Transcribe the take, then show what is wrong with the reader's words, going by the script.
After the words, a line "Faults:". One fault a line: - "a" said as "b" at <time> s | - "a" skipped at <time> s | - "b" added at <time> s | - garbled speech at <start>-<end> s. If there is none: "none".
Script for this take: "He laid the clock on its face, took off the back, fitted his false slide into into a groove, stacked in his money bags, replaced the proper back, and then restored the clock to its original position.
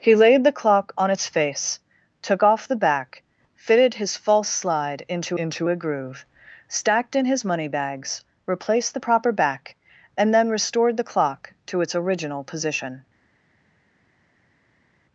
"He laid the clock on its face, took off the back, fitted his false slide into into a groove, stacked in his money bags, replaced the proper back, and then restored the clock to its original position.
Faults:
none